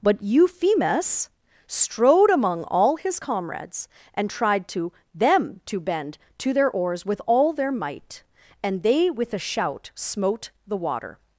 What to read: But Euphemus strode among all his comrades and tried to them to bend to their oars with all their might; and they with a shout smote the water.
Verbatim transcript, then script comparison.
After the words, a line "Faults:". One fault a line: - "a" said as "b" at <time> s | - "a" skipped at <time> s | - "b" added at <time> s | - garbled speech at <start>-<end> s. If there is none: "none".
But Euphemus strode among all his comrades and tried to them to bend to their oars with all their might; and they with a shout smote the water.
Faults:
none